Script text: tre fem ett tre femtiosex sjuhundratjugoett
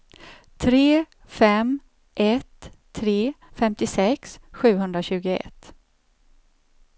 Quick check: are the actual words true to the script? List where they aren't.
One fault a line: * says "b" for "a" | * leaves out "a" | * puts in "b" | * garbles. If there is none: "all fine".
all fine